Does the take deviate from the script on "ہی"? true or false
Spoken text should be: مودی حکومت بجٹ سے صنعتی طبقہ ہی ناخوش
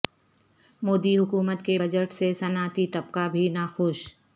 true